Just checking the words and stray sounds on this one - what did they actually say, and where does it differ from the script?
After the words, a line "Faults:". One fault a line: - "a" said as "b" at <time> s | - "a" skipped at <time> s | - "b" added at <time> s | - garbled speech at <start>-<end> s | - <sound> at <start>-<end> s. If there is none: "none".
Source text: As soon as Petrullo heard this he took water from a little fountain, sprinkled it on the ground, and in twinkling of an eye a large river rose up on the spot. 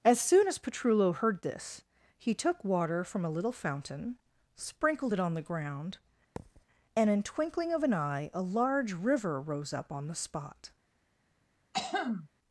As soon as Petrullo heard this he took water from a little fountain, sprinkled it on the ground, and in twinkling of an eye a large river rose up on the spot.
Faults:
- thud at 6.4-6.6 s
- throat clearing at 11.7-12.3 s